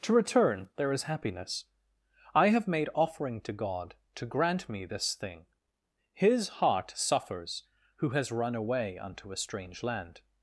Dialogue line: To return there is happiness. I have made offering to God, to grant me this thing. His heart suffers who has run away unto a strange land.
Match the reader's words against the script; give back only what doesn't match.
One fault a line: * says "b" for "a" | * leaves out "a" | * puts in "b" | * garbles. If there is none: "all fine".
all fine